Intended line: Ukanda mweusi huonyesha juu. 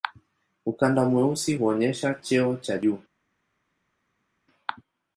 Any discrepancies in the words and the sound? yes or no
yes